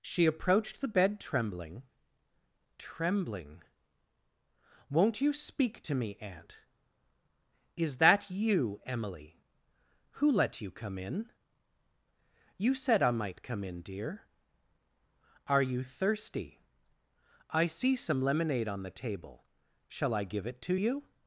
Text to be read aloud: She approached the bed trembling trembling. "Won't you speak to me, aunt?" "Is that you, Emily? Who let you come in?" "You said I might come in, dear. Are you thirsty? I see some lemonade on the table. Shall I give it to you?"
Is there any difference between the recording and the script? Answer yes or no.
no